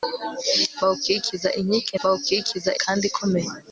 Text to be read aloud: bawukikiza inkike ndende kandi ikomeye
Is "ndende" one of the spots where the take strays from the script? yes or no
yes